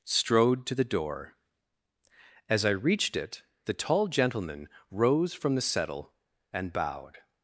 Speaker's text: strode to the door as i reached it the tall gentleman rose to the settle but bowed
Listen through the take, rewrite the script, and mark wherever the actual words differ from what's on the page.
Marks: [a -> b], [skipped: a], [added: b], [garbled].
strode to the door as i reached it the tall gentleman rose [to -> from] the settle [but -> and] bowed